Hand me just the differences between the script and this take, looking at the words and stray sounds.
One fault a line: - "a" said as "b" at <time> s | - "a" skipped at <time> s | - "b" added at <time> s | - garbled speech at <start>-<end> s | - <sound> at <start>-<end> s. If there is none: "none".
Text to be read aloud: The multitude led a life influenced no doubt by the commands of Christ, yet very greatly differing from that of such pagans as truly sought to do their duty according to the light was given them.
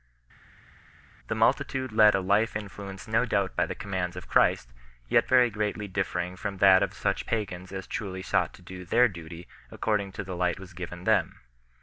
none